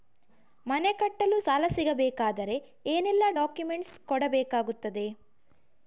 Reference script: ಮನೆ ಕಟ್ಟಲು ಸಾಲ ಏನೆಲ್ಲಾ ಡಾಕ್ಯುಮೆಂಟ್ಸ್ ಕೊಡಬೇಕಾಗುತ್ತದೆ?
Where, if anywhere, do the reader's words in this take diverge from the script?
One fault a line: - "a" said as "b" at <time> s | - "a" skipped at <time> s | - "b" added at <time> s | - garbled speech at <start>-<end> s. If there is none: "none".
- "ಸಿಗಬೇಕಾದರೆ" added at 1.7 s